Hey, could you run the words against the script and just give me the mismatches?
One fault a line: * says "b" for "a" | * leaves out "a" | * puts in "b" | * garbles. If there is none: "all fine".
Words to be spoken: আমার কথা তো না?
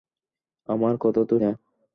all fine